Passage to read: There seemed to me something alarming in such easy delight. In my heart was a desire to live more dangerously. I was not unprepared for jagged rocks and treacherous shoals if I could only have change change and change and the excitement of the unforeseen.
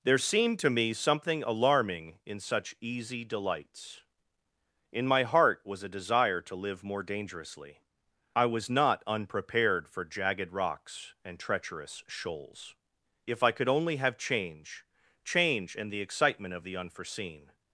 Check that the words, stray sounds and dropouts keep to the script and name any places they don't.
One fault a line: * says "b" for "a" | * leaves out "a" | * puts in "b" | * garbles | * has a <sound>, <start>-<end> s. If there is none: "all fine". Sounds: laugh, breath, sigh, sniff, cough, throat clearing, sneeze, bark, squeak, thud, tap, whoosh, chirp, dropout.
* says "delights" for "delight"
* leaves out "change and"